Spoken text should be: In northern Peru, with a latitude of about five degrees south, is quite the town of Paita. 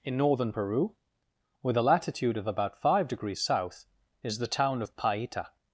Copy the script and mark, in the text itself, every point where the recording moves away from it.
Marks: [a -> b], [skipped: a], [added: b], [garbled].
In northern Peru, with a latitude of about five degrees south, is [skipped: quite] the town of Paita.